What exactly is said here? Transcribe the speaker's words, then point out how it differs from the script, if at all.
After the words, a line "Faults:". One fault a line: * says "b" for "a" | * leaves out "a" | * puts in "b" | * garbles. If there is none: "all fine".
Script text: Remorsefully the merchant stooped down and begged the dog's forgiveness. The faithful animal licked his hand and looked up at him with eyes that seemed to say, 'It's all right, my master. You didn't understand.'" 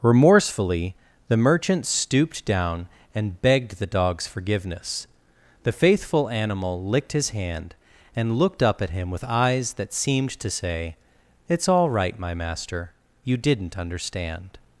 Remorsefully the merchant stooped down and begged the dog's forgiveness. The faithful animal licked his hand and looked up at him with eyes that seemed to say, 'It's all right, my master. You didn't understand.'"
Faults:
all fine